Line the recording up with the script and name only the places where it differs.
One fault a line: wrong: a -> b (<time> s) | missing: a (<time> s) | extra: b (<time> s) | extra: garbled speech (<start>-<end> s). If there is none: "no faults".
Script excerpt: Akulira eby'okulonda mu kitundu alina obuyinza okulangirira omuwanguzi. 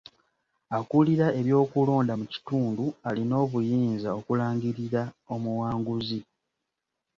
no faults